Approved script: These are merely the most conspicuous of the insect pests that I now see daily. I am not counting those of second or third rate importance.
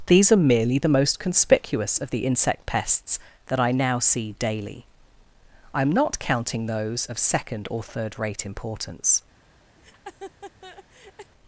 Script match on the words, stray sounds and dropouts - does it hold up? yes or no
no